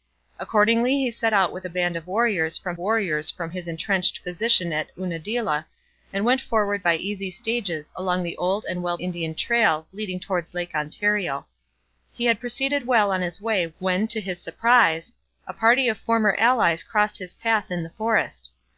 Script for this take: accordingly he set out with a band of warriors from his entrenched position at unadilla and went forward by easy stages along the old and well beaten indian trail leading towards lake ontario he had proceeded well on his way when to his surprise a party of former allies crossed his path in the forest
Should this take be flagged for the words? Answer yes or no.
yes